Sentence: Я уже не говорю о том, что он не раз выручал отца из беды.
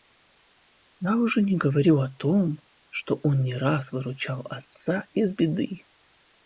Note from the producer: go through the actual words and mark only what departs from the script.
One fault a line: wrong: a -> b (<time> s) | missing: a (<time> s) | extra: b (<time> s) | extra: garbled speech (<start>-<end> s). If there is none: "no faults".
no faults